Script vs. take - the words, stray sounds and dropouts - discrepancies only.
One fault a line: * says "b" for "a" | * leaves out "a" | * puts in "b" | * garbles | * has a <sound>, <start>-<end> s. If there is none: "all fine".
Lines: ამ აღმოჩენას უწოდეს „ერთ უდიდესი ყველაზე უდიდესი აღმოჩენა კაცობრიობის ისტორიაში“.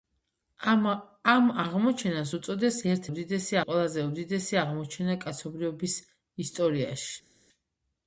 all fine